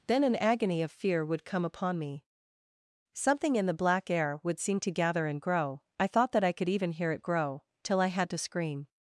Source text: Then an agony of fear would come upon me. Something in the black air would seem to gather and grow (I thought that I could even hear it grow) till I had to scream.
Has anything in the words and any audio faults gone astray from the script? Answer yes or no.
no